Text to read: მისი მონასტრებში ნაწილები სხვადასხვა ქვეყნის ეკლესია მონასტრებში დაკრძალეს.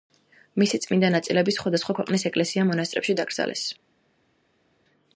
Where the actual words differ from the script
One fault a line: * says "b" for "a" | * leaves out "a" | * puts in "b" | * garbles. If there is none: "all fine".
* says "წმინდა" for "მონასტრებში"